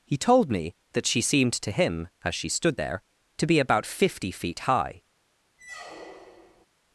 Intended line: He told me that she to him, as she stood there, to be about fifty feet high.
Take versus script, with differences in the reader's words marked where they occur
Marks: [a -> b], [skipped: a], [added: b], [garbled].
He told me that she [added: seemed] to him, as she stood there, to be about fifty feet high.